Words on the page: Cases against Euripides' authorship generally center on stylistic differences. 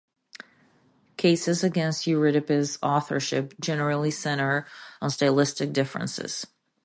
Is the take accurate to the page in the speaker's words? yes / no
yes